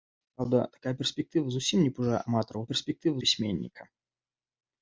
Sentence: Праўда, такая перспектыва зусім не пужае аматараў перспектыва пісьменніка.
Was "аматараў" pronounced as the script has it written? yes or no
yes